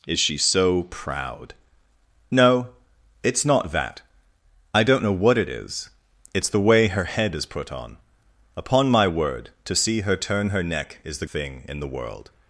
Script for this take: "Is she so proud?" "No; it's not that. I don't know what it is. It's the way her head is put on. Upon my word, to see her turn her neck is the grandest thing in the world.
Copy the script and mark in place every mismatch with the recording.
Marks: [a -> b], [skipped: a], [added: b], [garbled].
"Is she so proud?" "No; it's not that. I don't know what it is. It's the way her head is put on. Upon my word, to see her turn her neck is the [skipped: grandest] thing in the world.